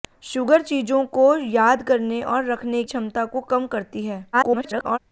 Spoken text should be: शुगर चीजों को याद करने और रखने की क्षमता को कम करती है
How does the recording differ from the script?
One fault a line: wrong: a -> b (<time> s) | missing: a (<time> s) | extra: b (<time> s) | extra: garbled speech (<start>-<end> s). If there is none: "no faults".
missing: की (2.8 s)
extra: garbled speech (4.3-5.0 s)